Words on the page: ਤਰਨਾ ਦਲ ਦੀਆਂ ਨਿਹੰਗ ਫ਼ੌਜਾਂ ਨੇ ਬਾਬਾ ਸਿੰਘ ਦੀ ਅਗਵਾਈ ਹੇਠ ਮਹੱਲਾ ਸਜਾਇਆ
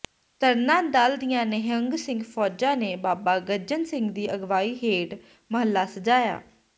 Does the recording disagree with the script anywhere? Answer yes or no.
yes